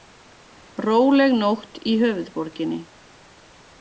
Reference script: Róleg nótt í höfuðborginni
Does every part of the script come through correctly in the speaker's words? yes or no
yes